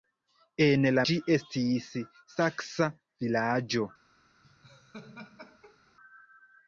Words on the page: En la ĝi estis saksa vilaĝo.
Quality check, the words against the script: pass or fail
pass